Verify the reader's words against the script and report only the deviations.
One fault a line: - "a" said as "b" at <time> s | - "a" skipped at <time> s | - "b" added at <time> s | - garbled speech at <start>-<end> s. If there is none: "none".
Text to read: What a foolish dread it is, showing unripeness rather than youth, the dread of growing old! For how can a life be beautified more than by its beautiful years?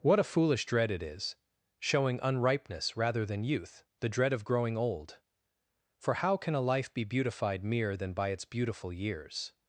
- "more" said as "mere" at 7.6 s